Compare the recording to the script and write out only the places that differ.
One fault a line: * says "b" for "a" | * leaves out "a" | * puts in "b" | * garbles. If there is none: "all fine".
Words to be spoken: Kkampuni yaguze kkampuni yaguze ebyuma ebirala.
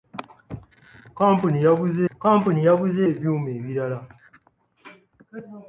all fine